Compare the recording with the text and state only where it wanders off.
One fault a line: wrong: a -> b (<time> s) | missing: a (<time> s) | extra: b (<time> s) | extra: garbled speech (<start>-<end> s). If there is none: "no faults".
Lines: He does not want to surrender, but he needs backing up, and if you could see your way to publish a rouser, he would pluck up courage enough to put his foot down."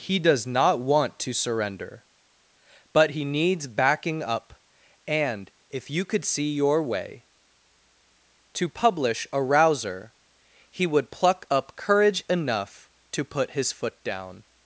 no faults